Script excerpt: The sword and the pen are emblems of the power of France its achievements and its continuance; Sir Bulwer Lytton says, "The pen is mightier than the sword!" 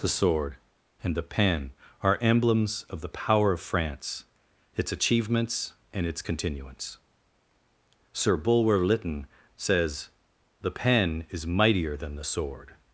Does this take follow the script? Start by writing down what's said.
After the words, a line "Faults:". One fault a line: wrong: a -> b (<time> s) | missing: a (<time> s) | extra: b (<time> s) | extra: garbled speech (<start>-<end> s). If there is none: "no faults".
The sword and the pen are emblems of the power of France its achievements and its continuance; Sir Bulwer Lytton says, "The pen is mightier than the sword!"
Faults:
no faults